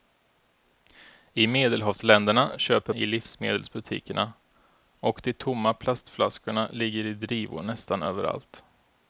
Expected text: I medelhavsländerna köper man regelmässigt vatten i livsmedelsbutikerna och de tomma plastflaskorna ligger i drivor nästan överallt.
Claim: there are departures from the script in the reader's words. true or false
true